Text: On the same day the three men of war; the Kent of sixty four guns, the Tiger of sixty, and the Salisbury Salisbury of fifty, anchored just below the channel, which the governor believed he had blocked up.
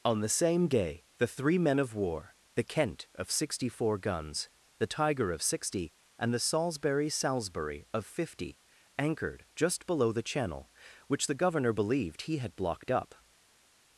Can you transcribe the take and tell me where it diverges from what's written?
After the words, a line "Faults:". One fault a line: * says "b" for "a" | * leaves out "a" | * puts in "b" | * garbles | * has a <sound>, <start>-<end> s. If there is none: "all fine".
On the same day the three men of war; the Kent of sixty four guns, the Tiger of sixty, and the Salisbury Salisbury of fifty, anchored just below the channel, which the governor believed he had blocked up.
Faults:
all fine